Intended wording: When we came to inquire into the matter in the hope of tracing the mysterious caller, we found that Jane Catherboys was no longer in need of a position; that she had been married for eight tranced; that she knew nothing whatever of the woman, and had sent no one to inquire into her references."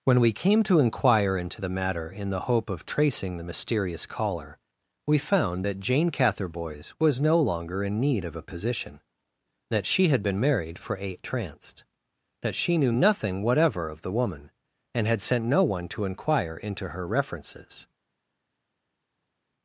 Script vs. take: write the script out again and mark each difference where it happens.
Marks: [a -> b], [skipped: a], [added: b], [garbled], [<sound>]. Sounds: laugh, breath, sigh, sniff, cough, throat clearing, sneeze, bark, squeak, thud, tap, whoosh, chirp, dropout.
When we came to inquire into the matter in the hope of tracing the mysterious caller, we found that Jane Catherboys was no longer in need of a position; that she had been married for eight tranced; that she knew nothing whatever of the woman, and had sent no one to inquire into her references."